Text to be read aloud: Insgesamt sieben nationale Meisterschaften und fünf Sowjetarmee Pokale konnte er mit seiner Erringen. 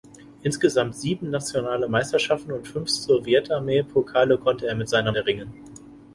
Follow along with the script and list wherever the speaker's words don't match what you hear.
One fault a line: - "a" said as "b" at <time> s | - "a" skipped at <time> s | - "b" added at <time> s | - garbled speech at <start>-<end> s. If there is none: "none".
none